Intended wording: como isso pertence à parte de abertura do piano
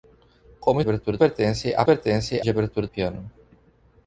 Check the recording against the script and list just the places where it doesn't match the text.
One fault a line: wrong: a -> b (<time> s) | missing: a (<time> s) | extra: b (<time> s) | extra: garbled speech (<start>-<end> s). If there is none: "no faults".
wrong: isso -> abertura (0.8 s)
wrong: parte -> pertence (1.8 s)
missing: do (2.9 s)